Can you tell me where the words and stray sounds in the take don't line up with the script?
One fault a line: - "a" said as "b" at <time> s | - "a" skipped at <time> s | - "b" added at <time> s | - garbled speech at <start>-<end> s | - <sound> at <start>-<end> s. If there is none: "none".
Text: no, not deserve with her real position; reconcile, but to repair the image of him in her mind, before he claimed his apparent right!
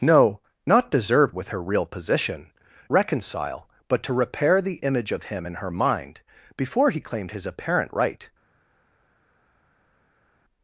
none